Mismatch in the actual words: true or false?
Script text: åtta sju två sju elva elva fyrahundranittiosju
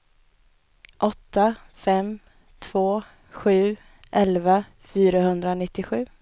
true